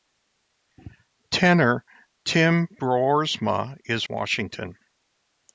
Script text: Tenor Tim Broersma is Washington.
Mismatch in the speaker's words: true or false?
false